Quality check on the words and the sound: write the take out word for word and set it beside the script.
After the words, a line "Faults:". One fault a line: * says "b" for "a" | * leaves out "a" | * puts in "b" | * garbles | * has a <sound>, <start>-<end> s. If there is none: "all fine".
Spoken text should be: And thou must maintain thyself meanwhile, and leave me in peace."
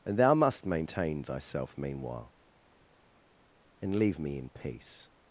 And thou must maintain thyself meanwhile, and leave me in peace."
Faults:
all fine